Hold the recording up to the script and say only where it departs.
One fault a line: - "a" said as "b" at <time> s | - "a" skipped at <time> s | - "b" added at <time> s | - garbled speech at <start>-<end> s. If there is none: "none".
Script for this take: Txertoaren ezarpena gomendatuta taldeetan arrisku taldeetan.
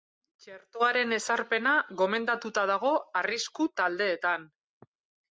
- "taldeetan" said as "dago" at 2.7 s